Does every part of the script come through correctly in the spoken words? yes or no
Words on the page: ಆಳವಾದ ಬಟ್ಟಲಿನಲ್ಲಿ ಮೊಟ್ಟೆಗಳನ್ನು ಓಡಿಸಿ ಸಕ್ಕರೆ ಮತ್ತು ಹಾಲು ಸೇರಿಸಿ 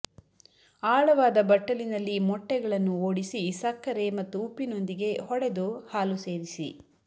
no